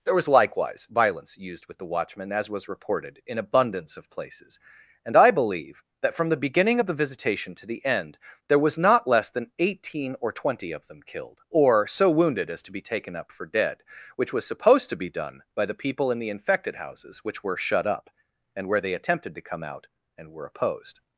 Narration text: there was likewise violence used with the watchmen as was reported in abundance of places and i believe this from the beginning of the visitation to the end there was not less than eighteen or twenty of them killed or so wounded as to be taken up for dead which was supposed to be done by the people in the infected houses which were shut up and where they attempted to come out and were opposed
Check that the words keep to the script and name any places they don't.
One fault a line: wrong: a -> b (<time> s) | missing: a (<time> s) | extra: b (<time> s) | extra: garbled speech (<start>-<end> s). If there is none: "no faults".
wrong: this -> that (6.0 s)